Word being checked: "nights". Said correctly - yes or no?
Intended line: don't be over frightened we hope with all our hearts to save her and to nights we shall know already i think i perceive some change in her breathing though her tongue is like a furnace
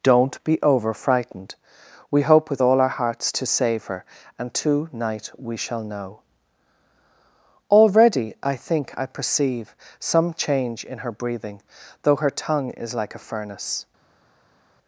no